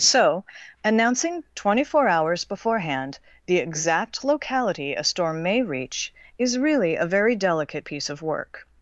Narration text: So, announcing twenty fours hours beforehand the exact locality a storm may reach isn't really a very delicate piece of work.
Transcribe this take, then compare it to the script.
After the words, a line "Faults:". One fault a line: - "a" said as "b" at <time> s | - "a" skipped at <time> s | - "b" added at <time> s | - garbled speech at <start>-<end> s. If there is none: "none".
So, announcing twenty four hours beforehand the exact locality a storm may reach is really a very delicate piece of work.
Faults:
- "fours" said as "four" at 1.8 s
- "isn't" said as "is" at 6.4 s